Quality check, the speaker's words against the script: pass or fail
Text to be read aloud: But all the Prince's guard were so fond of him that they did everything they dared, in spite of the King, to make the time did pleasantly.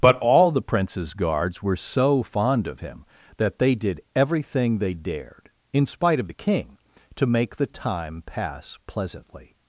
fail